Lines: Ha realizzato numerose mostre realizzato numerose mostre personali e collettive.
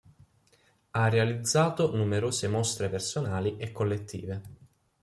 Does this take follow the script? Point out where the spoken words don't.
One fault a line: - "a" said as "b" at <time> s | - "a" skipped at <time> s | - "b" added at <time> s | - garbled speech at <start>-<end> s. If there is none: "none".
- "realizzato numerose mostre" skipped at 2.9 s